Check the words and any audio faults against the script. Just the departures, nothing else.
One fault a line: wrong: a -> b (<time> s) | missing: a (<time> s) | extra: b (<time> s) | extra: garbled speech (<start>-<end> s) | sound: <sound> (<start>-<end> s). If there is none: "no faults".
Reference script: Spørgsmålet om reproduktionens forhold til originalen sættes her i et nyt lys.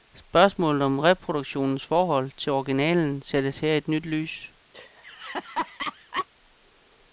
sound: laugh (4.7-6.3 s)